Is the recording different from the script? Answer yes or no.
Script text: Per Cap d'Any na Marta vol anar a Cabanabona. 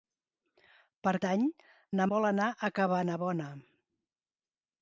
yes